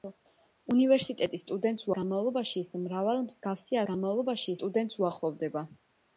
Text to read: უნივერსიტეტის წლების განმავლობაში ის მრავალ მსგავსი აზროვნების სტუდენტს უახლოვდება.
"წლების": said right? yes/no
no